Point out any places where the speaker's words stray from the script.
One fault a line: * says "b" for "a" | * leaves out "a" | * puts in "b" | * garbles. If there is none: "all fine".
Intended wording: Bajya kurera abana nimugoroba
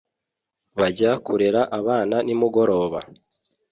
all fine